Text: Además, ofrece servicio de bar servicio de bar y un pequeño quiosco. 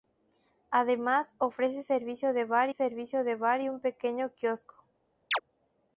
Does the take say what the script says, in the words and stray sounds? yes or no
no